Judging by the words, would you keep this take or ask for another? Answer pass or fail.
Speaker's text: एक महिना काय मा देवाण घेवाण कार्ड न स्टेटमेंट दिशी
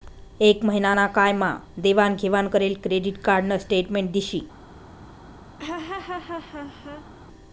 fail